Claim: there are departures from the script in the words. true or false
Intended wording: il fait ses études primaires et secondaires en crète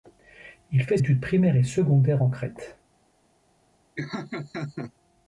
true